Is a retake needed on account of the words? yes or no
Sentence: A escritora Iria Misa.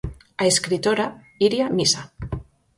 no